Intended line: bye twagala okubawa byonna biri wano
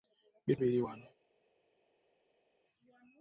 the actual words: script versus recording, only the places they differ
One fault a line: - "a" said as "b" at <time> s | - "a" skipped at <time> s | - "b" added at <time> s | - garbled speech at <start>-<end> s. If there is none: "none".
- "twagala okubawa byonna" skipped at 0.6 s